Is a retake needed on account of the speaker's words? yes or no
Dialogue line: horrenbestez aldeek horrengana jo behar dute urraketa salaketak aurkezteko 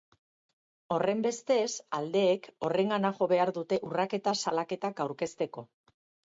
no